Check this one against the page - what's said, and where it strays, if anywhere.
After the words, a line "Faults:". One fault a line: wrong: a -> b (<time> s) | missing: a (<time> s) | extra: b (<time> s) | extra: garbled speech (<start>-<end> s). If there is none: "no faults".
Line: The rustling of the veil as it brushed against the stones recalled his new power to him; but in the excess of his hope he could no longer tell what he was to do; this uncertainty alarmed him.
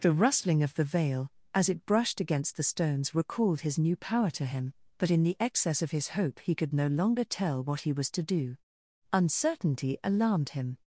The rustling of the veil as it brushed against the stones recalled his new power to him; but in the excess of his hope he could no longer tell what he was to do; uncertainty alarmed him.
Faults:
missing: this (8.6 s)